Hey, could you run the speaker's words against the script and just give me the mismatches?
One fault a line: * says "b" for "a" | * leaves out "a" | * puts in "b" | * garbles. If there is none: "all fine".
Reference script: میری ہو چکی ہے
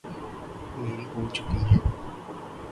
all fine